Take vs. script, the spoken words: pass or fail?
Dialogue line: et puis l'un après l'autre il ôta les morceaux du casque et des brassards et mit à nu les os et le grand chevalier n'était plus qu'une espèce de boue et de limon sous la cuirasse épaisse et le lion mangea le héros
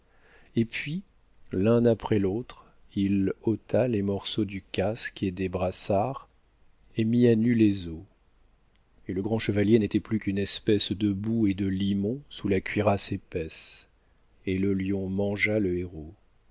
pass